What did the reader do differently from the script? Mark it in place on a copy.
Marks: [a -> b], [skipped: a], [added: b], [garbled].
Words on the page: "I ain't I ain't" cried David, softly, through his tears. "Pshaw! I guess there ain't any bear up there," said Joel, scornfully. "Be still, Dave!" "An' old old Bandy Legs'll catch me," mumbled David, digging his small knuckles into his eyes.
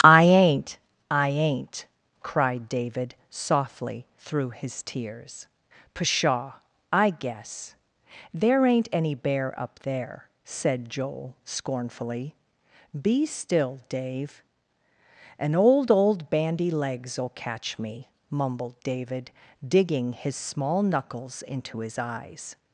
"I ain't I ain't" cried David, softly, through his tears. "Pshaw! I guess there ain't any bear up there," said Joel, scornfully. "Be still, Dave!" "An' old old Bandy Legs'll catch me," mumbled David, digging his small knuckles into his eyes.